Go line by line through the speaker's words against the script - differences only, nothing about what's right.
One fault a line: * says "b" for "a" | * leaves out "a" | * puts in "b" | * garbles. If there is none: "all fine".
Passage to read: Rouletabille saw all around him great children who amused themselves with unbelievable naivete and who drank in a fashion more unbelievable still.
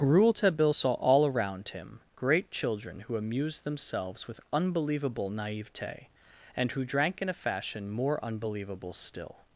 all fine